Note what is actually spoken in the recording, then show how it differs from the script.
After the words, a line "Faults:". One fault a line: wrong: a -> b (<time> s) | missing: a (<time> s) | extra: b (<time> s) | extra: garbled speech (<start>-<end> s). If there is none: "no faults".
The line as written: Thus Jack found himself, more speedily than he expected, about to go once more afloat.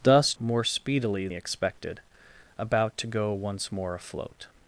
Thus More speedily he expected, about to go once more afloat.
Faults:
missing: Jack found himself (0.3 s)
missing: than (1.3 s)